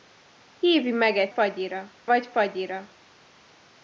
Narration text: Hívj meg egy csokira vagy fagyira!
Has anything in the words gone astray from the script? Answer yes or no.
yes